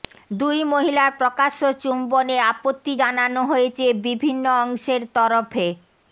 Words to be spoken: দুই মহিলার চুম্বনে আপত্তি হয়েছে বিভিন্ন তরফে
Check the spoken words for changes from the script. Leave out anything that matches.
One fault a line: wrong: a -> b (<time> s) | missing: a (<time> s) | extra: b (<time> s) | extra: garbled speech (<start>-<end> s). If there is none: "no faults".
extra: প্রকাশ্য (1.2 s)
extra: জানানো (3.0 s)
extra: অংশের (4.6 s)